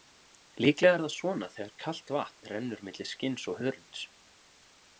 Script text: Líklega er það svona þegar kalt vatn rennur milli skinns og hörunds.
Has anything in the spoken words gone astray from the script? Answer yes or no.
no